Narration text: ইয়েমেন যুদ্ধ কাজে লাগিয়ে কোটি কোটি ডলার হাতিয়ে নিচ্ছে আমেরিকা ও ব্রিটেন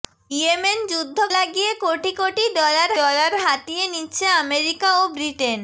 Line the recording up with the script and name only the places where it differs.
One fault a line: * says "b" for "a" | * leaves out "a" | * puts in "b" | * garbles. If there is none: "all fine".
* leaves out "কাজে"
* puts in "ডলার"